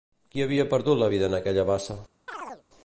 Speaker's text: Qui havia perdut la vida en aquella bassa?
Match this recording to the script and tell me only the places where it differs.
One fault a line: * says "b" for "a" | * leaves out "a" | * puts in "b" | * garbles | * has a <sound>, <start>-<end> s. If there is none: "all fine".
* has a chirp, 2.3-2.6 s